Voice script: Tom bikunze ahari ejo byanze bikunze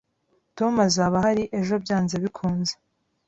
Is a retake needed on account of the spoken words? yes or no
yes